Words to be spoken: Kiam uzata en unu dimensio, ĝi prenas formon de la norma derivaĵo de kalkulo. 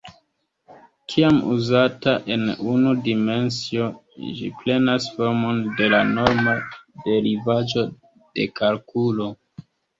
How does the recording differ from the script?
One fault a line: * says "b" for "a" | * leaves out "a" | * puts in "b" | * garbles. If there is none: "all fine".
all fine